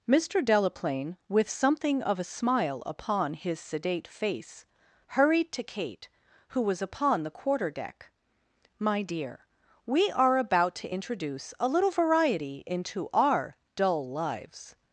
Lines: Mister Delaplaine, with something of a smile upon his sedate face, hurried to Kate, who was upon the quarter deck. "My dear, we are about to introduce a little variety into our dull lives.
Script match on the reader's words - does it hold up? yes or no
yes